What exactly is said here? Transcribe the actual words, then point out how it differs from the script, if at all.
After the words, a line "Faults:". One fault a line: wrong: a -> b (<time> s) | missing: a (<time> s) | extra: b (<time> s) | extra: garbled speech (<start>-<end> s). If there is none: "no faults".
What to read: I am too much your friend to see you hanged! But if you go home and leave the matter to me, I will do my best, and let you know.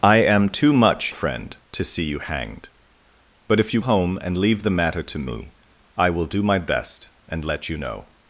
I am too much friend to see you hanged! But if you home and leave the matter to me, I will do my best, and let you know.
Faults:
missing: your (1.1 s)
missing: go (3.8 s)